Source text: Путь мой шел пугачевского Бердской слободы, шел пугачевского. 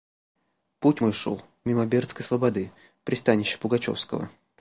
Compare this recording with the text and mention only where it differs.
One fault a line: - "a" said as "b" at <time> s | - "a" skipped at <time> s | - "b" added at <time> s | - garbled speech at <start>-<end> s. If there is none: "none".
- "пугачевского" said as "мимо" at 1.6 s
- "шел" said as "пристанища" at 3.0 s